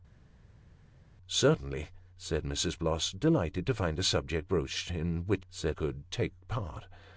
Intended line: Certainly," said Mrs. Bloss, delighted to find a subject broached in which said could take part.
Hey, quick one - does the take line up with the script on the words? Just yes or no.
yes